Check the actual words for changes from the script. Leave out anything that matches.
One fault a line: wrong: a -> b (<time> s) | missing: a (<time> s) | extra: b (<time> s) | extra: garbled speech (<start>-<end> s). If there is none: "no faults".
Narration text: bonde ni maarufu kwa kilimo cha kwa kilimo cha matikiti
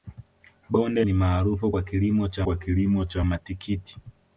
no faults